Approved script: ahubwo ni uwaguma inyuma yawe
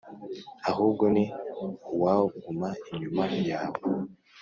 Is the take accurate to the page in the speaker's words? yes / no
yes